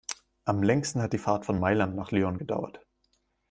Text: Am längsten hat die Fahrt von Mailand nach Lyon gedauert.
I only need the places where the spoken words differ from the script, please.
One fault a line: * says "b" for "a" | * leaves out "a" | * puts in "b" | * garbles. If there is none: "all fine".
all fine